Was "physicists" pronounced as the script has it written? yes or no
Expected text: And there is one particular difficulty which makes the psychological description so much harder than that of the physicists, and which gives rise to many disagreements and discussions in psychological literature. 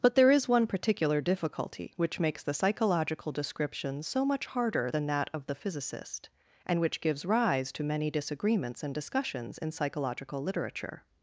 no